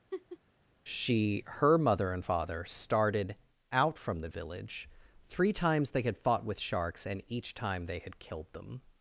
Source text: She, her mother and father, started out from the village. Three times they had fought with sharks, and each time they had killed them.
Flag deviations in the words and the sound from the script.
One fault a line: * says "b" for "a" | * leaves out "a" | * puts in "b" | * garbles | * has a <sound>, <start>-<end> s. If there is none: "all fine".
* has a laugh, 0.1-0.4 s